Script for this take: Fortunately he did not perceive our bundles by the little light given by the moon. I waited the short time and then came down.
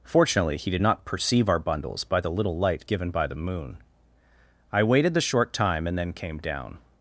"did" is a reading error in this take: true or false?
false